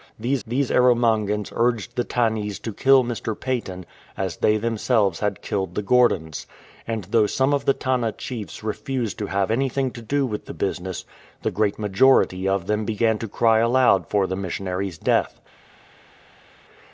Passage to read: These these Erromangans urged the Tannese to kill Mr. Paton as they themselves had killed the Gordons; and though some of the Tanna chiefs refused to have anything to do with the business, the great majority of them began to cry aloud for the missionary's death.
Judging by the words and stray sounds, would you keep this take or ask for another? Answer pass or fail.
pass